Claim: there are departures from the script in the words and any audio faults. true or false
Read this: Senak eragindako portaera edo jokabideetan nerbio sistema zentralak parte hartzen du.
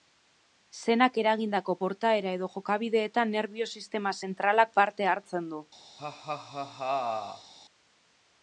true